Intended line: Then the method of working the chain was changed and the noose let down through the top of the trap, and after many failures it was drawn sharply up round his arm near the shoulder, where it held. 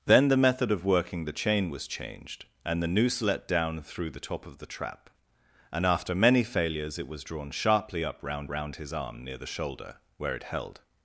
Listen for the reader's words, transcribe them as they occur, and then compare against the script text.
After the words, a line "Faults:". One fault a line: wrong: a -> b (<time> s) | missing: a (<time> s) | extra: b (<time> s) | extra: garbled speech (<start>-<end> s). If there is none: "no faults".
Then the method of working the chain was changed and the noose let down through the top of the trap, and after many failures it was drawn sharply up round round his arm near the shoulder, where it held.
Faults:
extra: round (8.5 s)